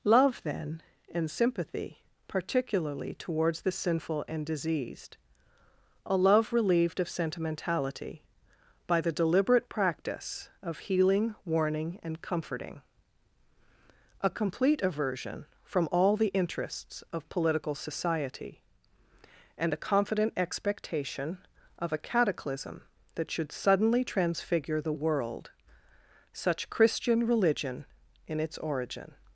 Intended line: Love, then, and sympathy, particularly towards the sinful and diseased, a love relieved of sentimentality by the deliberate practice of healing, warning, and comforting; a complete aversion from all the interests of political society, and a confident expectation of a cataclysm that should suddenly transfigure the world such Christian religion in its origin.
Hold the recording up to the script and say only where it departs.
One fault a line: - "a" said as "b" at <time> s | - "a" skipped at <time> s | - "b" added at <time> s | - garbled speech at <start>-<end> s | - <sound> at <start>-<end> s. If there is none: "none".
none